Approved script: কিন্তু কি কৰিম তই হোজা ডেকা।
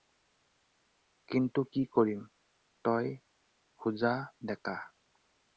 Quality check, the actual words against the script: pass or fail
pass